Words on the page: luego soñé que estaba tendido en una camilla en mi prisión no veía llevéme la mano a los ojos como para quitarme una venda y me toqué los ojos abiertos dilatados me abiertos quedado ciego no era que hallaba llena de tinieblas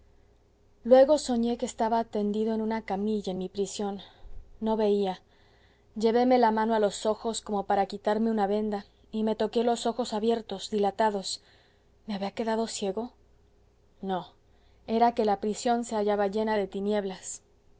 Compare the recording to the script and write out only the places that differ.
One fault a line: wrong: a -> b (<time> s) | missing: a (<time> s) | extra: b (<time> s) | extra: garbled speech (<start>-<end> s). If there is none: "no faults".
wrong: abiertos -> había (12.1 s)
extra: la prisión se (15.2 s)